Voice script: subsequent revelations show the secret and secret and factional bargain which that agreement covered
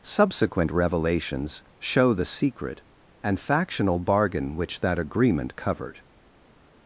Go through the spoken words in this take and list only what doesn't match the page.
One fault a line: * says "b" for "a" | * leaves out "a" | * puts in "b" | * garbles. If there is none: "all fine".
* leaves out "secret and"